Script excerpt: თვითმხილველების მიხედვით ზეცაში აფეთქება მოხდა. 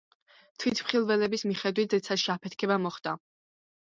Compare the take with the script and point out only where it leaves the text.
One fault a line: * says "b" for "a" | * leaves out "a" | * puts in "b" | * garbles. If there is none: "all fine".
all fine